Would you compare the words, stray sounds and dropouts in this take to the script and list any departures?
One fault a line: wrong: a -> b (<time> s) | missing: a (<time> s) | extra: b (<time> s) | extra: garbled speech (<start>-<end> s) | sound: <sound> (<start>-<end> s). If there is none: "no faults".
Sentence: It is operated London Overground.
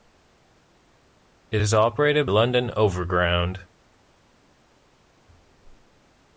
no faults